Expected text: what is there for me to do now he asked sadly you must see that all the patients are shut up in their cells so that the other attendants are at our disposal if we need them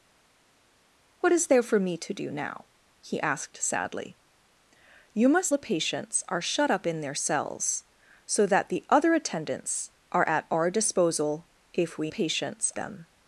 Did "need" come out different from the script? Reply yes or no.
yes